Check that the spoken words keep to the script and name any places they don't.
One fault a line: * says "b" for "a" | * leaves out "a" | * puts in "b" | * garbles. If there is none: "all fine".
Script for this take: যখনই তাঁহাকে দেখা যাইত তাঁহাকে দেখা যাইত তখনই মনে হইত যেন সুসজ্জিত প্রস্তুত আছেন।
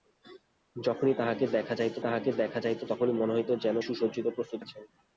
all fine